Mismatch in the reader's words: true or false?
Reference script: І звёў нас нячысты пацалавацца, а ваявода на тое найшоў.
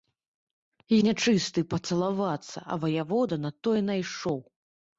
true